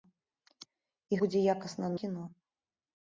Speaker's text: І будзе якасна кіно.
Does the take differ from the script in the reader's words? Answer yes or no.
no